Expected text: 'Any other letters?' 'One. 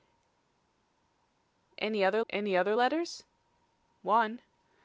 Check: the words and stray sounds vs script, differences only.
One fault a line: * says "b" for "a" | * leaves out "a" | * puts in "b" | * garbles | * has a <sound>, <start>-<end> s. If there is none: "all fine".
* puts in "any other"